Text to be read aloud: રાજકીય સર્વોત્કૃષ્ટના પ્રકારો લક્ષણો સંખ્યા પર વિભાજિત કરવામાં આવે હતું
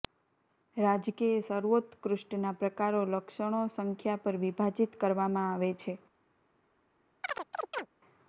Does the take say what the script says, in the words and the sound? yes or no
no